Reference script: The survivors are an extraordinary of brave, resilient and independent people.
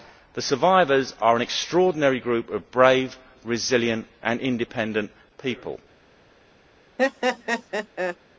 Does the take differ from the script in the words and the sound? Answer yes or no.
yes